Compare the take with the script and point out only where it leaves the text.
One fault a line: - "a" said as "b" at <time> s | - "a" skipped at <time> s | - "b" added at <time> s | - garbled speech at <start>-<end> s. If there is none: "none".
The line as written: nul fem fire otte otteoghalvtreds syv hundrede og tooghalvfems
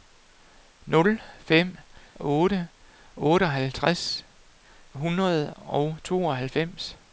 - "fire" skipped at 1.8 s
- "syv" skipped at 4.2 s